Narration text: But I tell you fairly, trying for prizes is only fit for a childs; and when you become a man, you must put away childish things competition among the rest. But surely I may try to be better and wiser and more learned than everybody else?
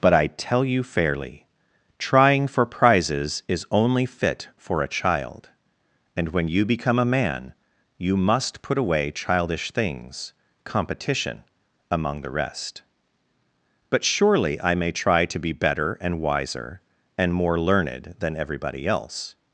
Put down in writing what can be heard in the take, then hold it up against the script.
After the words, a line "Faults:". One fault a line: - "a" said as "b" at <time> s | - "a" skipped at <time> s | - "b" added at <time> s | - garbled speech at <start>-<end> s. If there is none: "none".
But I tell you fairly, trying for prizes is only fit for a child; and when you become a man, you must put away childish things competition among the rest. But surely I may try to be better and wiser and more learned than everybody else?
Faults:
- "childs" said as "child" at 4.9 s